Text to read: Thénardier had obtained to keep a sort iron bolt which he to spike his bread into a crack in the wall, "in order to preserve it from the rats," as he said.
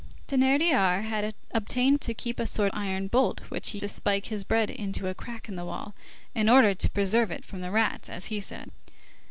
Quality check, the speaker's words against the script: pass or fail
pass